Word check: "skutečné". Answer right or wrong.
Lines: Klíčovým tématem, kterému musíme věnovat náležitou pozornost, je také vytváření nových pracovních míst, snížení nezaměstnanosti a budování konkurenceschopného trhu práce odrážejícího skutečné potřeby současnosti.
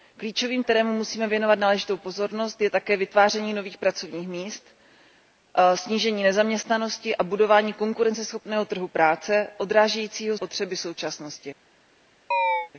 wrong